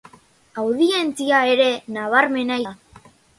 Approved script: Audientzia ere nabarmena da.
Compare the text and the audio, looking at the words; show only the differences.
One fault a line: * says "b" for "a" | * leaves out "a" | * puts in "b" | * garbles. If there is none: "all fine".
all fine